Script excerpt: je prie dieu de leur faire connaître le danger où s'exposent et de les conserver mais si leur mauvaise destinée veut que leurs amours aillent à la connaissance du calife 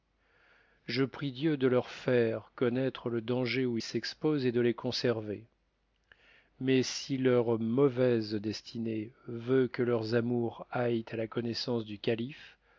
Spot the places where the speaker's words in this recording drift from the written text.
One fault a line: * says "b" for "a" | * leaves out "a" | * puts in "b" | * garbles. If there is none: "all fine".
all fine